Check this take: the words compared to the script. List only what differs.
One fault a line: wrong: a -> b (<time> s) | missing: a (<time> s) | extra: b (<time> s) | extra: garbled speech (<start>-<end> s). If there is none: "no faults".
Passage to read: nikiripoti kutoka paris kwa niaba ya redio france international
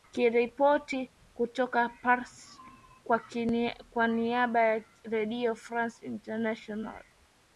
no faults